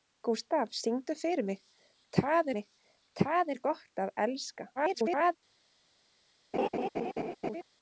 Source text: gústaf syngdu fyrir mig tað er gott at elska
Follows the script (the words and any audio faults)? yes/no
no